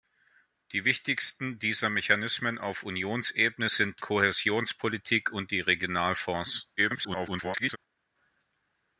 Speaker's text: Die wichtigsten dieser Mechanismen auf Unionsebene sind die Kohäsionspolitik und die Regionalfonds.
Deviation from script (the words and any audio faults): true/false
true